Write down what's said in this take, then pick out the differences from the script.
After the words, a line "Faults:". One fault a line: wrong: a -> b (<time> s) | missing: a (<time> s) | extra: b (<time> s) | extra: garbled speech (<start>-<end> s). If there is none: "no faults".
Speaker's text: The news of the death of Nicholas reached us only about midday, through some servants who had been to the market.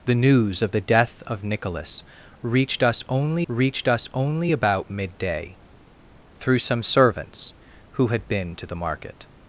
The news of the death of Nicholas reached us only reached us only about midday, through some servants who had been to the market.
Faults:
extra: reached us only (3.5 s)